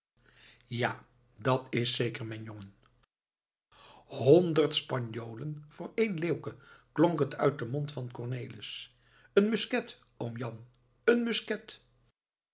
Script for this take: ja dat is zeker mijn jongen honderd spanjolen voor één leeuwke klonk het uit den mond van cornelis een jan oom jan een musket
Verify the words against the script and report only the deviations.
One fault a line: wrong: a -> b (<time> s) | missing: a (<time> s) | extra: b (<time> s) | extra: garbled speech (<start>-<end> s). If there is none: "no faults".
wrong: jan -> musket (9.5 s)